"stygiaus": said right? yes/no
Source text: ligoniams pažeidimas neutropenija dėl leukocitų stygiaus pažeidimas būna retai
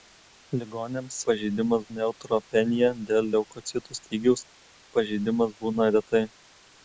yes